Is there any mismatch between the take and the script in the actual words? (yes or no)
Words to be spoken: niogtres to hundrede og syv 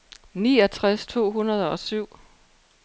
no